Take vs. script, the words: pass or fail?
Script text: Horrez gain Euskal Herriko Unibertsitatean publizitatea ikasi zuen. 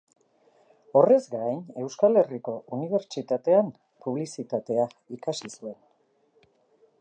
pass